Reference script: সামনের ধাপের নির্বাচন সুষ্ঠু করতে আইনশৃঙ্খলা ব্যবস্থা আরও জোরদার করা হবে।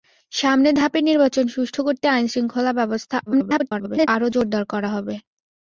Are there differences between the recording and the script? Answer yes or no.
yes